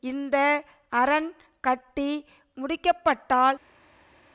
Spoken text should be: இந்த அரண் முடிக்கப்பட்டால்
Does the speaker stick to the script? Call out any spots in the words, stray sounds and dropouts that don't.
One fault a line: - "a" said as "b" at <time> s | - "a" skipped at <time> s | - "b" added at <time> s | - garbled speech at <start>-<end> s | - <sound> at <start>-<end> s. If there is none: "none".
- "கட்டி" added at 1.6 s